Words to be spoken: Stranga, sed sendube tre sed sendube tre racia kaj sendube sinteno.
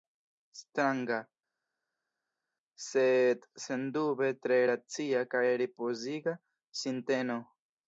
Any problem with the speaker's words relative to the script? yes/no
yes